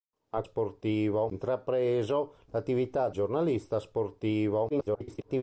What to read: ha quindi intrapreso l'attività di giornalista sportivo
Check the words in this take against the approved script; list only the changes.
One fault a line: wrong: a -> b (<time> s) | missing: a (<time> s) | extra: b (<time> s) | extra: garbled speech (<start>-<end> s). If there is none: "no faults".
wrong: quindi -> sportivo (0.4 s)
missing: di (3.1 s)
extra: garbled speech (4.7-5.4 s)